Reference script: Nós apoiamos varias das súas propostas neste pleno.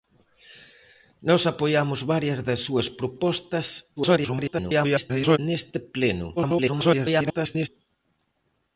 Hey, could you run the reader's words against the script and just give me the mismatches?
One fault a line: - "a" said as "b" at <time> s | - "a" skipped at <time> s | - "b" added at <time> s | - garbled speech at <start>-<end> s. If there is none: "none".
- garbled speech at 4.0-5.4 s
- garbled speech at 6.4-7.7 s